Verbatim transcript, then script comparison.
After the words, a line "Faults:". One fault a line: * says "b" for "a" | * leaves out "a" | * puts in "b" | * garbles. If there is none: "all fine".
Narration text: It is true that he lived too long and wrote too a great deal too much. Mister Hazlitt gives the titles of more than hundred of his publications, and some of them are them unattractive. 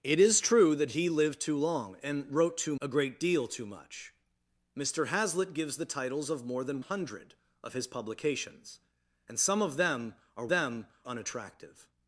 It is true that he lived too long and wrote too a great deal too much. Mister Hazlitt gives the titles of more than hundred of his publications, and some of them are them unattractive.
Faults:
all fine